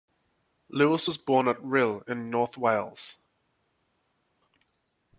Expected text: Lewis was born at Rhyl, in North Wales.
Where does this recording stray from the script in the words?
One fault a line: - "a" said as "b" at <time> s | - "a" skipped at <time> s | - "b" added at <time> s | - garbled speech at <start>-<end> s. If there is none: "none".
none